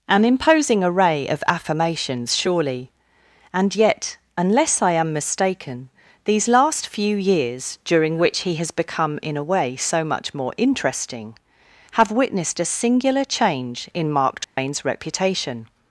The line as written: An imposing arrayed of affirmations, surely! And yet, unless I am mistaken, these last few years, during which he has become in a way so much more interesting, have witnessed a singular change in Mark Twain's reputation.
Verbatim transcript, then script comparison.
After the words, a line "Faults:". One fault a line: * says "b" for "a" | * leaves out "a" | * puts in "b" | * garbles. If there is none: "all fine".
An imposing array of affirmations, surely! And yet, unless I am mistaken, these last few years, during which he has become in a way so much more interesting, have witnessed a singular change in Mark Twain's reputation.
Faults:
* says "array" for "arrayed"